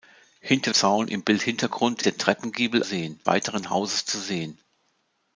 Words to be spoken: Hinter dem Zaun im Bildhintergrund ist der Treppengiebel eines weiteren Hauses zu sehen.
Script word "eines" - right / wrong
wrong